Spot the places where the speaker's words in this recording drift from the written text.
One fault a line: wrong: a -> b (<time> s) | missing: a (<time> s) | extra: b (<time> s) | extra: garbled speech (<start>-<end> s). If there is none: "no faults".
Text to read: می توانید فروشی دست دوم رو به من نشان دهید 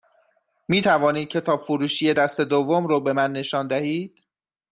extra: کتاب (1.3 s)